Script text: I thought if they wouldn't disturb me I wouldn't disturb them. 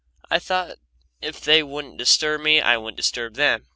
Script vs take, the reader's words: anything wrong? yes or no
no